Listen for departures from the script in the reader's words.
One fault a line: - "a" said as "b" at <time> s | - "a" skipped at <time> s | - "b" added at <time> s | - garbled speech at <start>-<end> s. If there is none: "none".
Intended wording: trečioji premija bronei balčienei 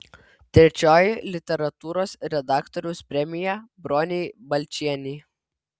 - "literatūros redaktoriaus" added at 1.4 s